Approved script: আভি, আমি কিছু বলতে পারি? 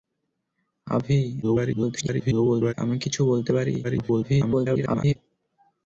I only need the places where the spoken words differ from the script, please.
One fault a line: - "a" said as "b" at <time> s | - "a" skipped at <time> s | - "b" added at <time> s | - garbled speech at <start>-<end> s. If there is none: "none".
- garbled speech at 1.4-2.7 s
- garbled speech at 3.8-5.2 s